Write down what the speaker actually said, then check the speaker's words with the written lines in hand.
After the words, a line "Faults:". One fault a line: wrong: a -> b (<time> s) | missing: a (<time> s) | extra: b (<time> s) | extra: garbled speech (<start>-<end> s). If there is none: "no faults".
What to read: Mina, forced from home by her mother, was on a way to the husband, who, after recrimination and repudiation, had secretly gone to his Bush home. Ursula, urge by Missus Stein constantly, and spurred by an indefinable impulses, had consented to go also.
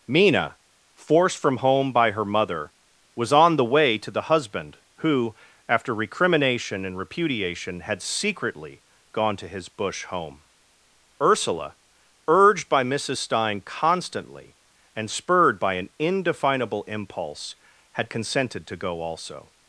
Mina, forced from home by her mother, was on the way to the husband, who, after recrimination and repudiation, had secretly gone to his Bush home. Ursula, urged by Missus Stein constantly, and spurred by an indefinable impulse, had consented to go also.
Faults:
wrong: a -> the (3.5 s)
wrong: urge -> urged (12.3 s)
wrong: impulses -> impulse (16.8 s)